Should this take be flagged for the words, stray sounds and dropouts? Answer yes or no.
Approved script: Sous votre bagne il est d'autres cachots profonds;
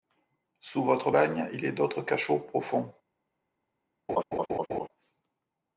yes